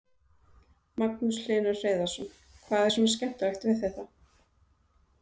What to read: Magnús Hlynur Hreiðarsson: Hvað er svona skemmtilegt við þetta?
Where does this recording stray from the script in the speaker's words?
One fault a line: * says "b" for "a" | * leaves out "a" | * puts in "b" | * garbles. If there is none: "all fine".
all fine